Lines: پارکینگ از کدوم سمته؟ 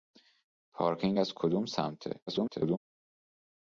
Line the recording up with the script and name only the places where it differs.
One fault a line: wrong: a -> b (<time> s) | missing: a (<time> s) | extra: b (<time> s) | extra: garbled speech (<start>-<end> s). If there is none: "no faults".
extra: garbled speech (2.3-2.8 s)